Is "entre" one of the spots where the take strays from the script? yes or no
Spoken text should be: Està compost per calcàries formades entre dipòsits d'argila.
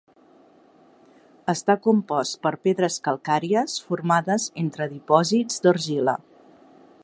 no